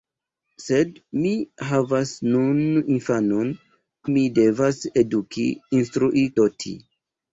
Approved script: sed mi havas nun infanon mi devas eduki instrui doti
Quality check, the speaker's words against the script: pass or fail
pass